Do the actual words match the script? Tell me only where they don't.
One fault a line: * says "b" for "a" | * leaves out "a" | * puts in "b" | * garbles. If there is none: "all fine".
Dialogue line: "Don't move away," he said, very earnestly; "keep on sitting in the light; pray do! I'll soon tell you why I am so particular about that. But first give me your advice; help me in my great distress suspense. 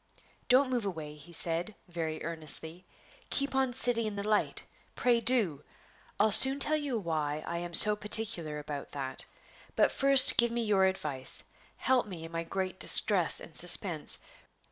* puts in "and"